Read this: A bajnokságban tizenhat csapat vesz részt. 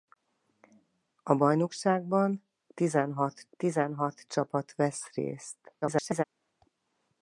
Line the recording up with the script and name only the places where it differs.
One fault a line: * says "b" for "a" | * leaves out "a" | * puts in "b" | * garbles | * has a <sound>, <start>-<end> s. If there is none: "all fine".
* puts in "tizenhat"
* garbles